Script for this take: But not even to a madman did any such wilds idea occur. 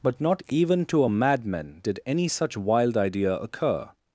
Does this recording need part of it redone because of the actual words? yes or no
yes